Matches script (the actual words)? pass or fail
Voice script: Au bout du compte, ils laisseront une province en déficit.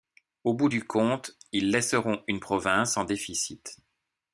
pass